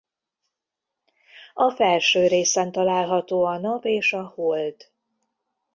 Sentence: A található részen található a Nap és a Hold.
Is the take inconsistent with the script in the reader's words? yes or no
yes